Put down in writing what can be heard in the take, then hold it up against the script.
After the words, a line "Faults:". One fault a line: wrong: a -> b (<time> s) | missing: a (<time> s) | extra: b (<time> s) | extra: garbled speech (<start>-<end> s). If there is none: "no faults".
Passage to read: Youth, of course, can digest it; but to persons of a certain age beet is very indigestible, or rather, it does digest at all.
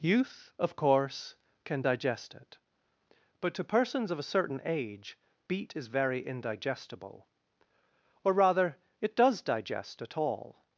Youth, of course, can digest it; but to persons of a certain age beet is very indigestible, or rather, it does digest at all.
Faults:
no faults